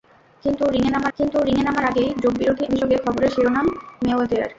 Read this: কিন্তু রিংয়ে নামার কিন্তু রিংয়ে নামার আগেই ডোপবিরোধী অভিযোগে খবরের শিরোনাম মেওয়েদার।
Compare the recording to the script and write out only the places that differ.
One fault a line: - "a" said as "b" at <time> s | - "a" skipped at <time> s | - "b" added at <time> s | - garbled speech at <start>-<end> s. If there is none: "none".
none